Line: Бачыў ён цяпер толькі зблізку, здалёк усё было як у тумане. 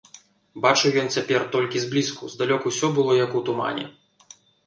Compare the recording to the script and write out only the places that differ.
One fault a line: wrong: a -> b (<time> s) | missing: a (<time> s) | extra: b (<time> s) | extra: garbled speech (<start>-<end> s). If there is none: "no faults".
no faults